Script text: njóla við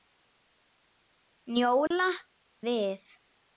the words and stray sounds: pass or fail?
fail